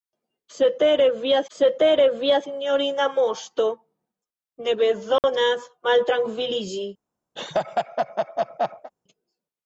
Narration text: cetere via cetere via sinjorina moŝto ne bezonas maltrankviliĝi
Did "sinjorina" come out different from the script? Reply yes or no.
no